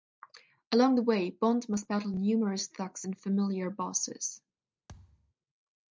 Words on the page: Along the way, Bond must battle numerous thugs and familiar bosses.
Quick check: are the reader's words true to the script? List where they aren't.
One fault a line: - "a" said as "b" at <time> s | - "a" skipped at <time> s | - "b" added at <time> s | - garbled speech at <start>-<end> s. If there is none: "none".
none